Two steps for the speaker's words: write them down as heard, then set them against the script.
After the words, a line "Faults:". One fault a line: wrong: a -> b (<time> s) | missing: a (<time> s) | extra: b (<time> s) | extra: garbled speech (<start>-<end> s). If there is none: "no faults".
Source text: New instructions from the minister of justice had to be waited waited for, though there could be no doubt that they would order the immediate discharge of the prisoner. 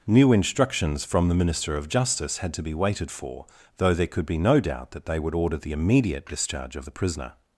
New instructions from the minister of justice had to be waited for, though there could be no doubt that they would order the immediate discharge of the prisoner.
Faults:
missing: waited (3.1 s)